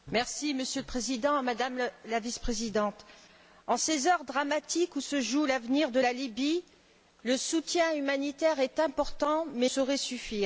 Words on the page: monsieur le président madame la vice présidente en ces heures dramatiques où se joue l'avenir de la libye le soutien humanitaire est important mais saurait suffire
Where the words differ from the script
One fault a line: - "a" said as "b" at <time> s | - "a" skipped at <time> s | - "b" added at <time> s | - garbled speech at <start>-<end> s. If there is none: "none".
none